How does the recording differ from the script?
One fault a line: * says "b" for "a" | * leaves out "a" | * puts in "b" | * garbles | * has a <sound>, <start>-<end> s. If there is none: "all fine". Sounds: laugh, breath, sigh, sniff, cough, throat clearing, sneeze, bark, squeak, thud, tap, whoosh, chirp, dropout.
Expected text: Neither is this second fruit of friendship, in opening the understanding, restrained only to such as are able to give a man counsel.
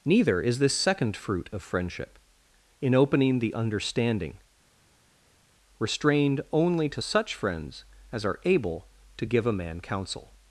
* puts in "friends"